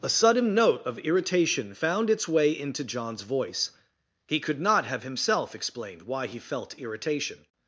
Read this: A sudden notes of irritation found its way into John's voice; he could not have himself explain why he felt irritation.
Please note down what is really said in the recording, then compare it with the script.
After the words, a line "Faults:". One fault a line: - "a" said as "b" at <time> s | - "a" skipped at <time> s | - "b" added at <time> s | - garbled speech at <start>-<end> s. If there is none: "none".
A sudden note of irritation found its way into John's voice; he could not have himself explained why he felt irritation.
Faults:
- "notes" said as "note" at 0.6 s
- "explain" said as "explained" at 5.5 s